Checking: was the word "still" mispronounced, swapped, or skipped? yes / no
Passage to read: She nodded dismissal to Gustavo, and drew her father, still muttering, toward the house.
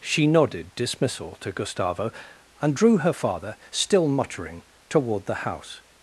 no